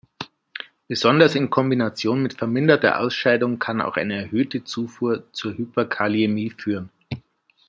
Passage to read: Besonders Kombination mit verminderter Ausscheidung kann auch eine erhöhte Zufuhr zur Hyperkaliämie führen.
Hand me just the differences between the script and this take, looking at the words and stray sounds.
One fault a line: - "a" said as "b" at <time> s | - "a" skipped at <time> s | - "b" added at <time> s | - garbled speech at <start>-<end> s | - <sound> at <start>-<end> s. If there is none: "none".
- "in" added at 1.4 s